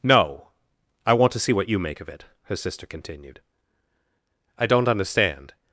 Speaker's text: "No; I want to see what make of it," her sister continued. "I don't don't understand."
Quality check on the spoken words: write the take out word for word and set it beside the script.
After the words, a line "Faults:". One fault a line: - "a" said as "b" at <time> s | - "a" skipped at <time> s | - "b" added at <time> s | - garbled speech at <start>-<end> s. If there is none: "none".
"No; I want to see what you make of it," her sister continued. "I don't understand."
Faults:
- "you" added at 1.7 s
- "don't" skipped at 4.9 s